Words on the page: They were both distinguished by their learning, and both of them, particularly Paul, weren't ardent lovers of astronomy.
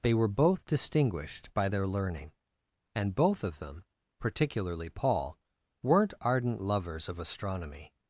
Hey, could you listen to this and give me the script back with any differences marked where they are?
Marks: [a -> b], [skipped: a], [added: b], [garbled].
They were both distinguished by their learning, and both of them, particularly Paul, weren't ardent lovers of astronomy.